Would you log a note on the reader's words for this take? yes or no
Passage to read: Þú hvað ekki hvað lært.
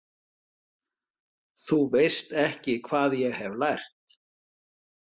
yes